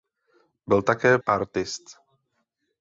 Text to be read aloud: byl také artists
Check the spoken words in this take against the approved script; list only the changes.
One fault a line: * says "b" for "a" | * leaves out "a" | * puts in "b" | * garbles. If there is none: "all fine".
all fine